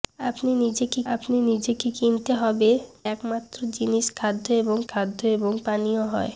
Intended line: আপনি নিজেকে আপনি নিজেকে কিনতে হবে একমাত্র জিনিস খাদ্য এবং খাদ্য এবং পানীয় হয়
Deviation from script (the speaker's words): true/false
false